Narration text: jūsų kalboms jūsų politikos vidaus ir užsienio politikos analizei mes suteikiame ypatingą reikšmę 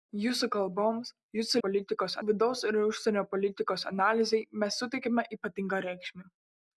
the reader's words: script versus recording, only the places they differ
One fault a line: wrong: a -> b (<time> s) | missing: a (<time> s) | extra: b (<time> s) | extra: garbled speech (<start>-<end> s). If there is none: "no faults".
no faults